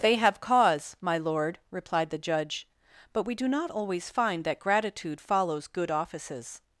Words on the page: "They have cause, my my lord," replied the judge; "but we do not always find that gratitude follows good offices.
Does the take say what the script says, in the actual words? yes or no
no